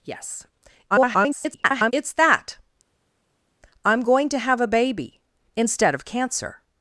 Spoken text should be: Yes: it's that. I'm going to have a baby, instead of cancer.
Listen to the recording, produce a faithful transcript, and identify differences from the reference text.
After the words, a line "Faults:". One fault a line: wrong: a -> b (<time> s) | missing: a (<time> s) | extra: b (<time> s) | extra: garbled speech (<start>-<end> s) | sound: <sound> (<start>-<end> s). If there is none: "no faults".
Yes: [garbled] it's that. I'm going to have a baby, instead of cancer.
Faults:
extra: garbled speech (0.9-1.9 s)